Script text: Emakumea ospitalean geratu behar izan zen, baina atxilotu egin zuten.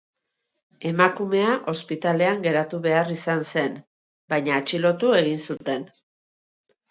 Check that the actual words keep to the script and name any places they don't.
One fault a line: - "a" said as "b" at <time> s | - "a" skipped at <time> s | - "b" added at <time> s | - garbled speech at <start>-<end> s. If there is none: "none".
none